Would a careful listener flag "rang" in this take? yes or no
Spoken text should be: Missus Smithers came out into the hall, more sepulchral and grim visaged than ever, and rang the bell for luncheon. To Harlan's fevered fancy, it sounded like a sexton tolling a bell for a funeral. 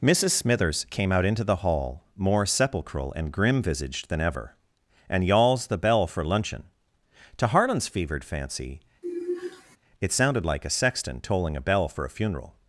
yes